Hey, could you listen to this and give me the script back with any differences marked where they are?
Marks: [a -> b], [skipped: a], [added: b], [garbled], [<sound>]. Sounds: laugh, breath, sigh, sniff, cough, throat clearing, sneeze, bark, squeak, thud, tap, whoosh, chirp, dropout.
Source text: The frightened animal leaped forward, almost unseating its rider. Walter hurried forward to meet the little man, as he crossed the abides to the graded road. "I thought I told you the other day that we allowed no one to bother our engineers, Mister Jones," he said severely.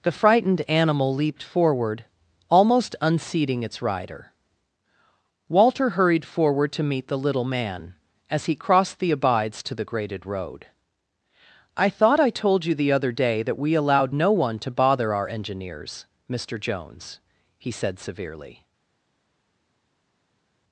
The frightened animal leaped forward, almost unseating its rider. Walter hurried forward to meet the little man, as he crossed the abides to the graded road. "I thought I told you the other day that we allowed no one to bother our engineers, Mister Jones," he said severely.